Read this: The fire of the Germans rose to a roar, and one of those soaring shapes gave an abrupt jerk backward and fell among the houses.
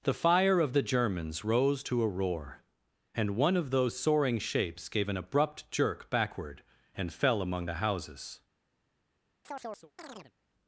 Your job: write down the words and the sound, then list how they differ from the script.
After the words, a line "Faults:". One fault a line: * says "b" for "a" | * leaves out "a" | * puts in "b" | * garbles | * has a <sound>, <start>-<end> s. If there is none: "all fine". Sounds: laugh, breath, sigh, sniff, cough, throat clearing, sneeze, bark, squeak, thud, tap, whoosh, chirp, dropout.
The fire of the Germans rose to a roar, and one of those soaring shapes gave an abrupt jerk backward and fell among the houses.
Faults:
* has a chirp, 9.4-10.3 s